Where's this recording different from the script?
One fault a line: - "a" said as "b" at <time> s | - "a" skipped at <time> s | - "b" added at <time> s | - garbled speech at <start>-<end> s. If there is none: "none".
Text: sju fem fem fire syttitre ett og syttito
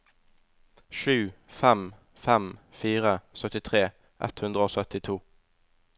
- "hundre" added at 4.5 s